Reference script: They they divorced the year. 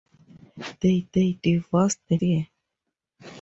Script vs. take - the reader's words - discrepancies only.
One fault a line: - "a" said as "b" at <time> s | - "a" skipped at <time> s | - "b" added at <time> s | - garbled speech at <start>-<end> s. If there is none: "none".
none